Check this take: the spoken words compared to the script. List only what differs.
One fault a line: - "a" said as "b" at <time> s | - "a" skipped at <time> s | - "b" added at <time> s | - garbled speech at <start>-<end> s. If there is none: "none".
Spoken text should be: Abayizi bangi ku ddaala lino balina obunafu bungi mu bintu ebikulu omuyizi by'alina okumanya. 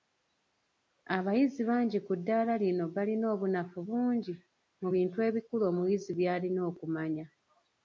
none